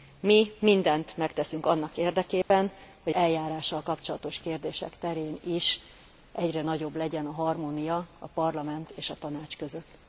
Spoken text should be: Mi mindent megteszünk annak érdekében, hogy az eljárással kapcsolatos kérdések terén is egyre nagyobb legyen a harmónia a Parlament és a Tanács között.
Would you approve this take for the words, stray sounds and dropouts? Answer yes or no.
no